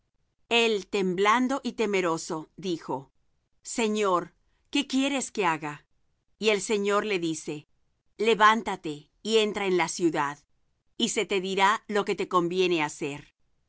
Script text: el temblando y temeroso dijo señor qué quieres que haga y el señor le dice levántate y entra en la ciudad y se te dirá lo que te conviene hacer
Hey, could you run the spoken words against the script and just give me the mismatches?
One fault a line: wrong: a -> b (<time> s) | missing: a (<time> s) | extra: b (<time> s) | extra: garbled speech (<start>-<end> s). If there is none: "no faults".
no faults